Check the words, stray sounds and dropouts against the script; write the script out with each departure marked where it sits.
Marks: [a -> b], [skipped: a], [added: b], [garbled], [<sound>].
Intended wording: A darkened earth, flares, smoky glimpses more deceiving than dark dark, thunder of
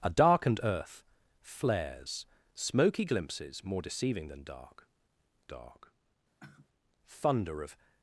A darkened earth, flares, smoky glimpses more deceiving than dark dark, [sigh] thunder of